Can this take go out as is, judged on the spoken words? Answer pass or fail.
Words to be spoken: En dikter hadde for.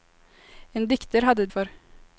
pass